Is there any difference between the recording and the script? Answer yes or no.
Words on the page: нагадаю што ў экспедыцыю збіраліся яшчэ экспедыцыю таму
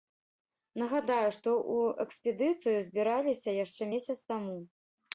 yes